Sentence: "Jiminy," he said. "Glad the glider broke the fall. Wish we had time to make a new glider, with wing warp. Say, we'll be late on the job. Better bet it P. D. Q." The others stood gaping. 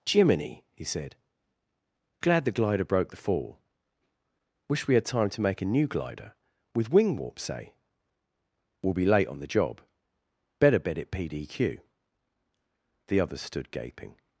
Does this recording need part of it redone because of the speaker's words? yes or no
no